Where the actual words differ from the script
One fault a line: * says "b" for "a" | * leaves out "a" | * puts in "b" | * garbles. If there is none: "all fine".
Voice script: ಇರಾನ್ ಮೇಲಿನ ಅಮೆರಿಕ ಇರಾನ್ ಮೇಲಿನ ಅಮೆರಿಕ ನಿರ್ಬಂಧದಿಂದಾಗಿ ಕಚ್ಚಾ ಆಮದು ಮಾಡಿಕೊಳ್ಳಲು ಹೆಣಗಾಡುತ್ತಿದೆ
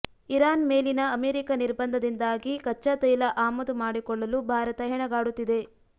* leaves out "ಇರಾನ್ ಮೇಲಿನ ಅಮೆರಿಕ"
* puts in "ತೈಲ"
* puts in "ಭಾರತ"